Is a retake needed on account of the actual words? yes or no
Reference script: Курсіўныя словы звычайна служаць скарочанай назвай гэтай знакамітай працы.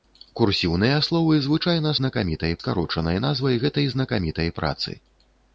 yes